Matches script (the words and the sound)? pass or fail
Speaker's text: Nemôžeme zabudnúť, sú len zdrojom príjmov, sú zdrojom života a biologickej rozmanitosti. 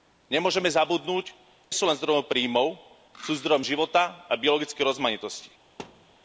fail